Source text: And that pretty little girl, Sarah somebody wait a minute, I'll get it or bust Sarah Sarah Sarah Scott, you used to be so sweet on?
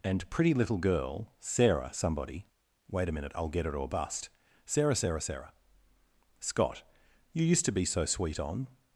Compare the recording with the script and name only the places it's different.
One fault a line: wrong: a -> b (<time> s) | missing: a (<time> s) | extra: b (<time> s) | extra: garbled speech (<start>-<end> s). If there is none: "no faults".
missing: that (0.3 s)